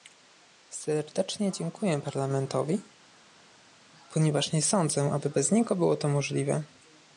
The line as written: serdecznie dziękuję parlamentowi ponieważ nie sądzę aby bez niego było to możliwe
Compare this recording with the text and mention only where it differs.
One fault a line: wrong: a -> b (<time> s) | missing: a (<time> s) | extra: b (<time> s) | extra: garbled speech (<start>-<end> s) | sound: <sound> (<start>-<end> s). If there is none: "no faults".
no faults